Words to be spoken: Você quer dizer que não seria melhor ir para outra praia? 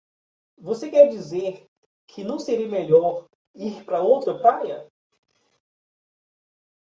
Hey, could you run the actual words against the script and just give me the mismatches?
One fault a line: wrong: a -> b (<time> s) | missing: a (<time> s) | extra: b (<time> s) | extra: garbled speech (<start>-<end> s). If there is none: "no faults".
no faults